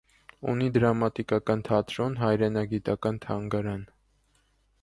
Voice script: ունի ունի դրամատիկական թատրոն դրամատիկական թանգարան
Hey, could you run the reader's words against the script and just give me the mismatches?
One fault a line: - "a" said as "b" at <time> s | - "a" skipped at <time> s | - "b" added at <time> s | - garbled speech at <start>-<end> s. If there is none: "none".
- "ունի" skipped at 0.7 s
- "դրամատիկական" said as "հայրենագիտական" at 2.2 s